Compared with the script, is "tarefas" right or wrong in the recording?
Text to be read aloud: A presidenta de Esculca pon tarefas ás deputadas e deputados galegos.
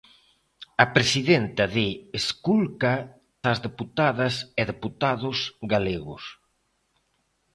wrong